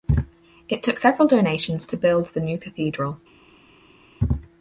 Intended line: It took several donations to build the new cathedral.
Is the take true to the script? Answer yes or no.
yes